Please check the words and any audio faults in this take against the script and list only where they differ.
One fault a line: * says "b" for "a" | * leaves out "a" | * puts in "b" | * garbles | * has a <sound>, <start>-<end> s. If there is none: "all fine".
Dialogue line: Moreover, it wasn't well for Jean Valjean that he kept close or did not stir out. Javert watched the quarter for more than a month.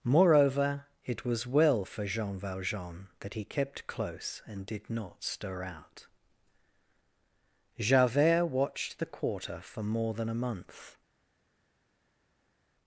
* says "was" for "wasn't"
* says "and" for "or"